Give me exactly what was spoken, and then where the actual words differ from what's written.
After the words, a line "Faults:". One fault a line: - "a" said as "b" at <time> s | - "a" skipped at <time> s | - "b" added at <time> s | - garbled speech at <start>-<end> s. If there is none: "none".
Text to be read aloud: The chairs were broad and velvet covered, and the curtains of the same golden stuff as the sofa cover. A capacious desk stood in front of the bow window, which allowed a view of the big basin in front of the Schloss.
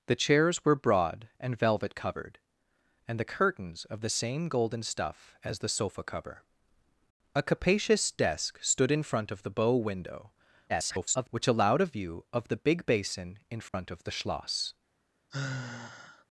The chairs were broad and velvet covered, and the curtains of the same golden stuff as the sofa cover. A capacious desk stood in front of the bow window, [garbled] which allowed a view of the big basin in front of the Schloss.
Faults:
- garbled speech at 10.7-11.3 s